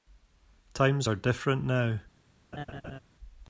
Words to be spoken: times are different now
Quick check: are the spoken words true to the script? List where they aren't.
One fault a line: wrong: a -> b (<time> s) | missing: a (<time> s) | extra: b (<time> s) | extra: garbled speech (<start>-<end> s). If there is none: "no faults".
no faults